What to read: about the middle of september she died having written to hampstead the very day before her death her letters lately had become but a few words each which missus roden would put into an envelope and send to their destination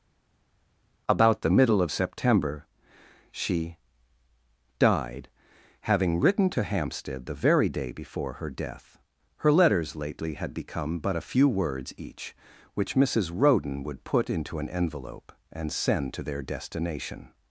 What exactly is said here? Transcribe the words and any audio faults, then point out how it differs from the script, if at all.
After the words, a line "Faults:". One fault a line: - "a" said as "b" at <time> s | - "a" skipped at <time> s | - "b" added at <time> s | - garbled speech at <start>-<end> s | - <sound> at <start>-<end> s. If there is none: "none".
about the middle of september she died having written to hampstead the very day before her death her letters lately had become but a few words each which missus roden would put into an envelope and send to their destination
Faults:
none